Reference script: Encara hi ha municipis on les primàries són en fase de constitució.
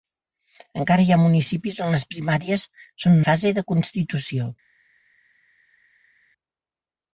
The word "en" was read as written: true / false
false